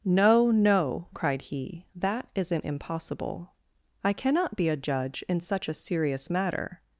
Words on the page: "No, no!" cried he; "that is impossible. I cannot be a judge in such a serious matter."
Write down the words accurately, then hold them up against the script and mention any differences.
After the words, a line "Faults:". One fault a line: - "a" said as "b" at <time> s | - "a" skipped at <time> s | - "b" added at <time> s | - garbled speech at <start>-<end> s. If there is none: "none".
"No, no!" cried he; "that isn't impossible. I cannot be a judge in such a serious matter."
Faults:
- "is" said as "isn't" at 2.3 s